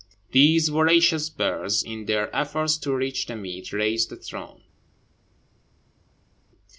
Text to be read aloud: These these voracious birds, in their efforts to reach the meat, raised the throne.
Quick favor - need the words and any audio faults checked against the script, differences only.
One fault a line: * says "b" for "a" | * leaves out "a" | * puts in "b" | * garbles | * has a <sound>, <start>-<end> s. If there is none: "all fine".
* leaves out "these"